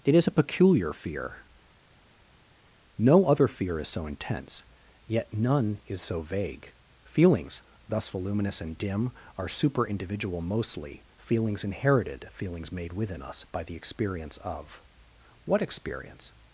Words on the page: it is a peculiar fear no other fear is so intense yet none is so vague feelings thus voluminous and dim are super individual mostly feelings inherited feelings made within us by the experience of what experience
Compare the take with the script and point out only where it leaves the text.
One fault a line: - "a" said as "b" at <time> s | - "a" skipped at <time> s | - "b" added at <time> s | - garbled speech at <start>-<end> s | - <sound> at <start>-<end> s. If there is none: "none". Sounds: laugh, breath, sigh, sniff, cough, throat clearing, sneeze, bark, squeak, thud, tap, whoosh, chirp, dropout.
none